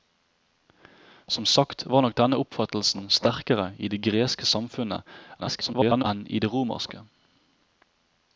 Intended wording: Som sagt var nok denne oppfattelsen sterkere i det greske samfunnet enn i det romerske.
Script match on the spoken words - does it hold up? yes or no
no